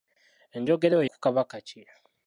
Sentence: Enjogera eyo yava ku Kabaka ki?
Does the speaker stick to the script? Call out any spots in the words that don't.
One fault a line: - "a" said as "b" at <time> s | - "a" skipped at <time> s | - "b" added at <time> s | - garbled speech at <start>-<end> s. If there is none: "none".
- "yava" skipped at 1.0 s